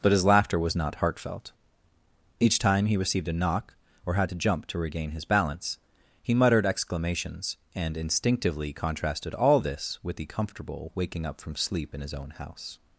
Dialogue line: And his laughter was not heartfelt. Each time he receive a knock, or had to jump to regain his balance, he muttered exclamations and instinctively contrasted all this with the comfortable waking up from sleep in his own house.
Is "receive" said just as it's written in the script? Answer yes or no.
no